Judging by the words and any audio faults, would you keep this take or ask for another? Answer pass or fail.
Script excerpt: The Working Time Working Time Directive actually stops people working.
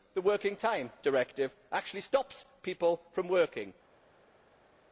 fail